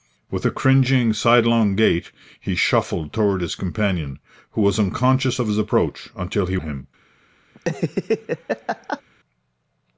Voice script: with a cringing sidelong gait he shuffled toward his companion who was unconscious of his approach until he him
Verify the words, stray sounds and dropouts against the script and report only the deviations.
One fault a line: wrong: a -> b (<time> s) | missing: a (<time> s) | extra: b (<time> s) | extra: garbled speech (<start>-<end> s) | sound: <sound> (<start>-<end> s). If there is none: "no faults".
sound: laugh (7.5-9.0 s)